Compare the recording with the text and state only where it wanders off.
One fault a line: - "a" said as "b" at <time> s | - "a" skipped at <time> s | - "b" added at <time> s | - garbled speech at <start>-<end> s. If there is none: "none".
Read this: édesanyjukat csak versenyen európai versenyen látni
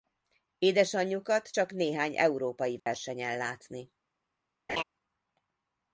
- "versenyen" said as "néhány" at 1.7 s